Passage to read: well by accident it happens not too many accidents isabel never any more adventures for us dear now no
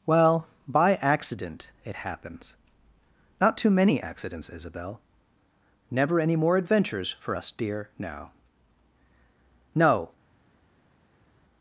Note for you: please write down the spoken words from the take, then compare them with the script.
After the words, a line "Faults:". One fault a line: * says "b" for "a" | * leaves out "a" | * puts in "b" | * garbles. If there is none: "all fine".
well by accident it happens not too many accidents isabel never any more adventures for us dear now no
Faults:
all fine